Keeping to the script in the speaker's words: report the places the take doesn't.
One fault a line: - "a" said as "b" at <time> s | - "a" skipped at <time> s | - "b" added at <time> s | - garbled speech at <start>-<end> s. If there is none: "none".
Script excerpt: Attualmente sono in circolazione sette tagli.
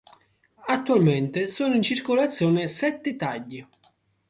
none